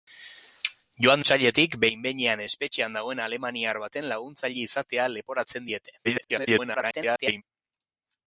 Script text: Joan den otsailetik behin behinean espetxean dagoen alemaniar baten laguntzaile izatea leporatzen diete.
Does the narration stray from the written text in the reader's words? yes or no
yes